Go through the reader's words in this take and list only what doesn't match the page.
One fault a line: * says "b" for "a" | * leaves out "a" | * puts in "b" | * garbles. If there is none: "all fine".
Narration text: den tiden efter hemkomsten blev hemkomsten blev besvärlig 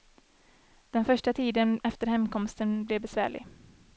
* puts in "första"
* leaves out "hemkomsten blev"